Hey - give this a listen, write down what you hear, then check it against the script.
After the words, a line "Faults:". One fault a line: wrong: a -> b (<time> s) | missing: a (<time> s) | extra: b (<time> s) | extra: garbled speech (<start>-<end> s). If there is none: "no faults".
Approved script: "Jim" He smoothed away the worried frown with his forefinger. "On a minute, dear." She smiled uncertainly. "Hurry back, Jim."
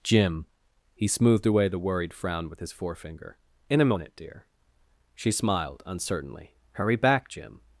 "Jim" He smoothed away the worried frown with his forefinger. "In a minute, dear." She smiled uncertainly. "Hurry back, Jim."
Faults:
wrong: On -> In (3.7 s)